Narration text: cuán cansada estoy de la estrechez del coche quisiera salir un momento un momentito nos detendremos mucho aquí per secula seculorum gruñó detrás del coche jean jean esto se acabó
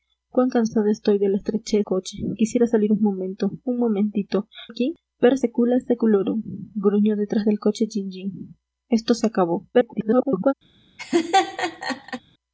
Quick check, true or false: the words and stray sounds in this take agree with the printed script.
false